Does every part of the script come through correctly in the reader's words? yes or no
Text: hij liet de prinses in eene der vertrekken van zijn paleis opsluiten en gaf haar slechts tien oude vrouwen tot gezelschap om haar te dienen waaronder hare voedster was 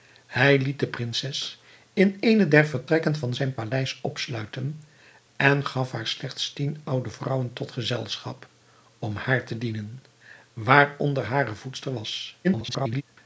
no